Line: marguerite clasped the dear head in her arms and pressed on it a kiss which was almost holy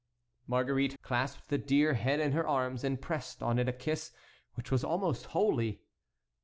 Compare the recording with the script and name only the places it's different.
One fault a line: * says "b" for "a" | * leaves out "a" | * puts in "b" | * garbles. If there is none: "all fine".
all fine